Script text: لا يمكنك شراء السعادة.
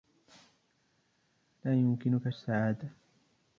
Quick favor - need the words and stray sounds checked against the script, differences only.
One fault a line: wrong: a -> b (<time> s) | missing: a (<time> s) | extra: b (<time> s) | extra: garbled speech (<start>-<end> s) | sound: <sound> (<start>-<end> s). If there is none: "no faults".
missing: شراء (2.3 s)